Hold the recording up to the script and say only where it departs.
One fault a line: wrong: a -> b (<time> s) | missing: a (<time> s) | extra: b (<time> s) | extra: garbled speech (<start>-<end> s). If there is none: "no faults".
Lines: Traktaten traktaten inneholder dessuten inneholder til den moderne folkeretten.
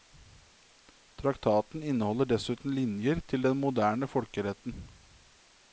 missing: traktaten (1.8 s)
wrong: inneholder -> linjer (2.8 s)